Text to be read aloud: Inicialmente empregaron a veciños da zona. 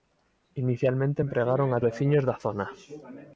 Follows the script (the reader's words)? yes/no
yes